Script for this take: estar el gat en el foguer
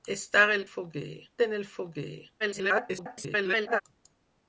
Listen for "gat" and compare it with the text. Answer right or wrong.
wrong